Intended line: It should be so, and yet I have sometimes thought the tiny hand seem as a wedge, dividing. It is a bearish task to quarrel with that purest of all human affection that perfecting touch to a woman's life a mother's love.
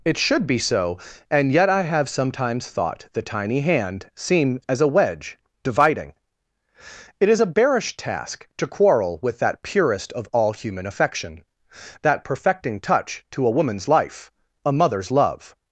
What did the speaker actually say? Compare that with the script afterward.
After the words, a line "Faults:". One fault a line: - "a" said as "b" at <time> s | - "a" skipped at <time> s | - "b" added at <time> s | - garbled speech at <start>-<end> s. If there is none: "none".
It should be so, and yet I have sometimes thought the tiny hand seem as a wedge, dividing. It is a bearish task to quarrel with that purest of all human affection that perfecting touch to a woman's life a mother's love.
Faults:
none